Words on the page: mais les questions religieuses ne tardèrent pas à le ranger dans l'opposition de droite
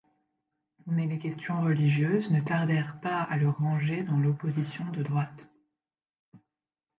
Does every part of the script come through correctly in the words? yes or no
yes